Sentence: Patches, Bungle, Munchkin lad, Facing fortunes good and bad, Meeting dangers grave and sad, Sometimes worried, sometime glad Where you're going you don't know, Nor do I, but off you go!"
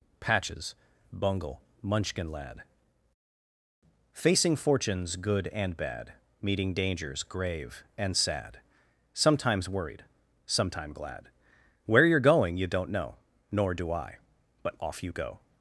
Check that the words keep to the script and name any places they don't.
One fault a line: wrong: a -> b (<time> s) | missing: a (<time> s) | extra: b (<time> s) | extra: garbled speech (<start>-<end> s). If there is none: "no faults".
no faults